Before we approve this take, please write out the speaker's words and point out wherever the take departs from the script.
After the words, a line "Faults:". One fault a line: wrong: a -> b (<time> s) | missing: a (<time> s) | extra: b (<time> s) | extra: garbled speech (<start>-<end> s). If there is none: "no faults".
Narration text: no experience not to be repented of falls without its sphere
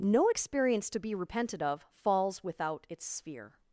no experience to be repented of falls without its sphere
Faults:
missing: not (0.9 s)